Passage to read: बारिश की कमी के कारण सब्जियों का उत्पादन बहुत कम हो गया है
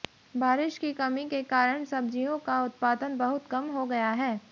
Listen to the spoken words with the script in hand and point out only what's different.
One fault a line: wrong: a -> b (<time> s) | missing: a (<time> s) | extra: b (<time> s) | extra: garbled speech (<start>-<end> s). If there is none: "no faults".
no faults